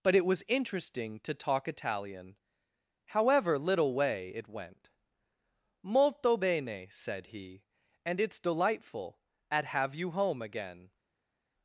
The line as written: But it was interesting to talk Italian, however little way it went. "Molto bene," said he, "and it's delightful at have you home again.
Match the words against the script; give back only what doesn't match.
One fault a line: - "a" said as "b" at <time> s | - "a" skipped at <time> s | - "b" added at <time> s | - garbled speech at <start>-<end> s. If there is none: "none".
none